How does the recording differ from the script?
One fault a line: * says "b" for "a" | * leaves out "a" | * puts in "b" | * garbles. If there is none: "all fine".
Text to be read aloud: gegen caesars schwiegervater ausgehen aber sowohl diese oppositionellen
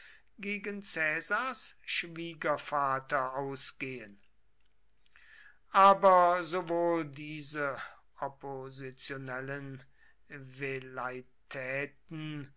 all fine